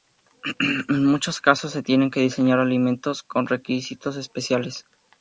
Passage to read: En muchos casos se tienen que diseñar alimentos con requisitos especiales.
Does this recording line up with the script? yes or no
yes